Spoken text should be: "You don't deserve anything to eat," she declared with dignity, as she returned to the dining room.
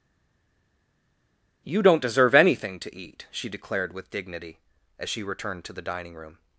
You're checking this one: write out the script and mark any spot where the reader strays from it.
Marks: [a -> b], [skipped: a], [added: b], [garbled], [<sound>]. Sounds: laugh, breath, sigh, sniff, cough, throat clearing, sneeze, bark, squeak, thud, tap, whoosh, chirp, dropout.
"You don't deserve anything to eat," she declared with dignity, as she returned to the dining room.